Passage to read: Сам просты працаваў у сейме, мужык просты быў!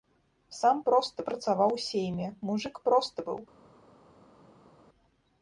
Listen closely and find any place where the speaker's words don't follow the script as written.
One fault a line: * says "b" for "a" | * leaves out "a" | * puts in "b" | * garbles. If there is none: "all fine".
all fine